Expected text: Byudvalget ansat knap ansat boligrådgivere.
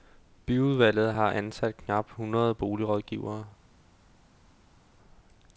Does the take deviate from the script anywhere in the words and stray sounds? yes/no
yes